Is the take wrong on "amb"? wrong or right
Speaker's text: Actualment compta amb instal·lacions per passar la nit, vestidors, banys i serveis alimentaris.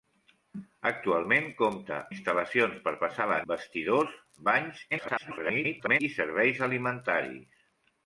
wrong